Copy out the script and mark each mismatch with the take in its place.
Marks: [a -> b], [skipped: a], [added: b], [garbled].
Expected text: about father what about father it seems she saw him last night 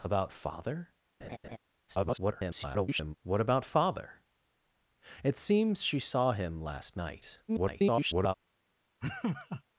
about father [garbled] what about father it seems she saw him last night [garbled]